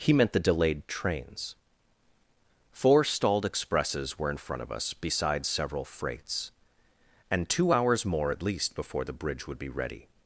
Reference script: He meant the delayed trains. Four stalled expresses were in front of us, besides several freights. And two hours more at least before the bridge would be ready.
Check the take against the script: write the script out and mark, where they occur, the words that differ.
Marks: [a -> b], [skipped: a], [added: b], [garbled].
He meant the delayed trains. Four stalled expresses were in front of us, besides several freights. And two hours more at least before the bridge would be ready.